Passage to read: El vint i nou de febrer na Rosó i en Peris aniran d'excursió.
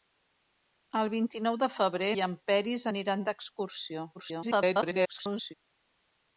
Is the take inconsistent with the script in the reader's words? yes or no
yes